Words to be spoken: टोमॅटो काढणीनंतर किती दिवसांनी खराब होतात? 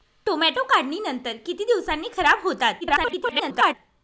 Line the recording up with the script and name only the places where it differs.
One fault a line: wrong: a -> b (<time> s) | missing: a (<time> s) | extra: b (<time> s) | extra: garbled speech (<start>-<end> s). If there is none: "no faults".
extra: garbled speech (2.8-3.7 s)